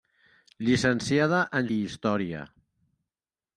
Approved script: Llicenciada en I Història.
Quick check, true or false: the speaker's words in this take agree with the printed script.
true